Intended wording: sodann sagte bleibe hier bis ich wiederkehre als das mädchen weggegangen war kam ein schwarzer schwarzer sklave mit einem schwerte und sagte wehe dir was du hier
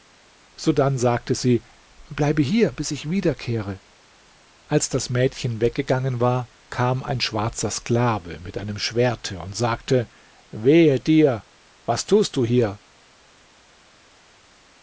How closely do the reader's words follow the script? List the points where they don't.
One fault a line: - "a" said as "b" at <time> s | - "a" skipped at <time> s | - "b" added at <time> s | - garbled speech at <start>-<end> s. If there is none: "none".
- "sie" added at 1.4 s
- "schwarzer" skipped at 7.7 s
- "tust" added at 12.1 s